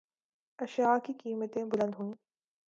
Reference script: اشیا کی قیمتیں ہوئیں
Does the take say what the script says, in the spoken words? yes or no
no